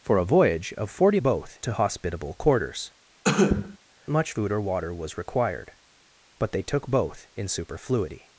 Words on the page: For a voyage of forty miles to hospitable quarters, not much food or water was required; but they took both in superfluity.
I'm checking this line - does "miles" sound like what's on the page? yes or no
no